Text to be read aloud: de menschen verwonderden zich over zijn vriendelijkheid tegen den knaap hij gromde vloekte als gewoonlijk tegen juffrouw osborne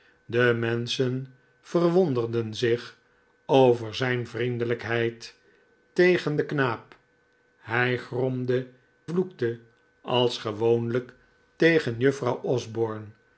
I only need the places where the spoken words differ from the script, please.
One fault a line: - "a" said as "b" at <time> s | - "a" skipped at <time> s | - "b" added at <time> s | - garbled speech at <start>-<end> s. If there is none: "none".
none